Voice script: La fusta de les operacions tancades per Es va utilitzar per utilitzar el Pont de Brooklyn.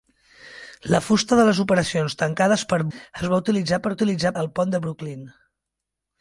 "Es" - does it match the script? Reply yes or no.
yes